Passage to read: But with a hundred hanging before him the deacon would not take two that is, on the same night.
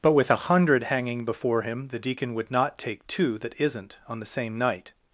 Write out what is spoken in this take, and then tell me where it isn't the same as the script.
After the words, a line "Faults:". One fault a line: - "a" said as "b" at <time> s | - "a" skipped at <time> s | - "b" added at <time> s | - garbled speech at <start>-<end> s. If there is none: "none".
But with a hundred hanging before him the deacon would not take two that isn't, on the same night.
Faults:
- "is" said as "isn't" at 3.6 s